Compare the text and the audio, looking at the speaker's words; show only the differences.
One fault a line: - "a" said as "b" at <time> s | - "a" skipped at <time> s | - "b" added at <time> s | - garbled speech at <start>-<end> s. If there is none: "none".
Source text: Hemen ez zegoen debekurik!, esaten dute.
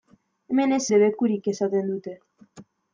- "zegoen" skipped at 0.8 s